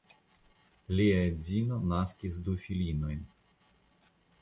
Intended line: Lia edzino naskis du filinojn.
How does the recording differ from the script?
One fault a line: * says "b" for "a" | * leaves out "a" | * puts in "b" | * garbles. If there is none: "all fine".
all fine